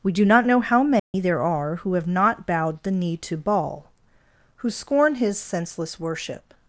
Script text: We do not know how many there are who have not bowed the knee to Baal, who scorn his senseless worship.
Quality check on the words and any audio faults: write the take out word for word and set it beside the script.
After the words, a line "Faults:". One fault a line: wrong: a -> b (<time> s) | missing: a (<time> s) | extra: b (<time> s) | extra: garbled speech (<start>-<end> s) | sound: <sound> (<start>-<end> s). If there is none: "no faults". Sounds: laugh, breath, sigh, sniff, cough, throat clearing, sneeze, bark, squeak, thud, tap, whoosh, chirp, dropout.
We do not know how many there are who have not bowed the knee to Baal, who scorn his senseless worship.
Faults:
sound: dropout (1.0-1.1 s)